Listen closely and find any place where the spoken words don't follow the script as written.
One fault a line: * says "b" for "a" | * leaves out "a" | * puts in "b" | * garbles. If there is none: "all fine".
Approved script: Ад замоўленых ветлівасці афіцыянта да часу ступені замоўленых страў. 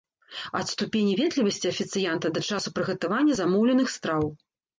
* says "ступені" for "замоўленых"
* says "прыгатавання" for "ступені"